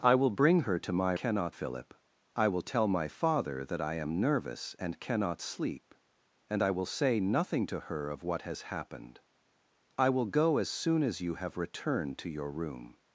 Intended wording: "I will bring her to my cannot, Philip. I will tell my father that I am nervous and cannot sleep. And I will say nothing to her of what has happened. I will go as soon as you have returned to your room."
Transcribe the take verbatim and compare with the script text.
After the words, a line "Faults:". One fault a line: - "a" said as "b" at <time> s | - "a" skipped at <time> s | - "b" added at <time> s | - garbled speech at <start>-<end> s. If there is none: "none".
"I will bring her to my cannot, Philip. I will tell my father that I am nervous and cannot sleep. And I will say nothing to her of what has happened. I will go as soon as you have returned to your room."
Faults:
none